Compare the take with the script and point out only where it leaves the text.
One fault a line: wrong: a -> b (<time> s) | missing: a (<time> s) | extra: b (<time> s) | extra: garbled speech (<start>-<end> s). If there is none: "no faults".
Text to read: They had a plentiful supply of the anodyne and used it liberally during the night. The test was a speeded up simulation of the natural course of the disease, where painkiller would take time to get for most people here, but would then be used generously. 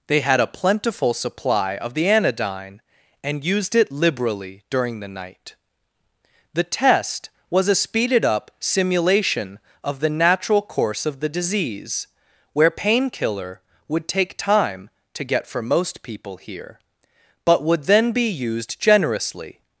no faults